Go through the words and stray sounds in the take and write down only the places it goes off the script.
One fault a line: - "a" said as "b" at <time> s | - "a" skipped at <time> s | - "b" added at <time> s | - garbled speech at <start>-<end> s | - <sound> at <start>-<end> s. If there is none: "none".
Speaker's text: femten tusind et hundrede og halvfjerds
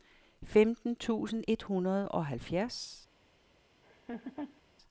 - laugh at 3.8-4.6 s